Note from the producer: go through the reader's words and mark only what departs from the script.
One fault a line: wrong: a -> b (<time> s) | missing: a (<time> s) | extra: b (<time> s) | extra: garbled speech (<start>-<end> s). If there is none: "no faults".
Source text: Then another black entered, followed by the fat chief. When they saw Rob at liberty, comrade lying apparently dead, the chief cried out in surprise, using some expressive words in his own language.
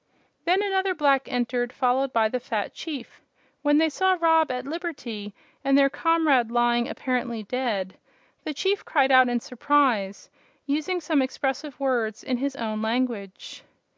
extra: and their (5.6 s)